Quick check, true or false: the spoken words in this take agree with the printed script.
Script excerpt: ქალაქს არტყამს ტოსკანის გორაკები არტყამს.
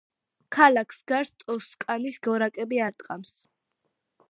false